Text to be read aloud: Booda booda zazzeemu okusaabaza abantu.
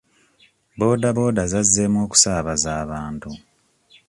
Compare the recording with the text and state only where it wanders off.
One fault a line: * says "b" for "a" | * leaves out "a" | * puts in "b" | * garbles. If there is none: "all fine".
all fine